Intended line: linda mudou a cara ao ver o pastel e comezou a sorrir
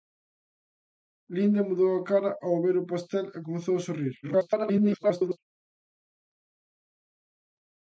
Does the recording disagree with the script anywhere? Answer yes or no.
yes